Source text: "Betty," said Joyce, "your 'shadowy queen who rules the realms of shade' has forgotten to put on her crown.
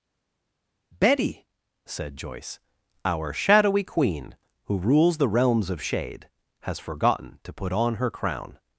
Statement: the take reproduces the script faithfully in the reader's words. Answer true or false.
false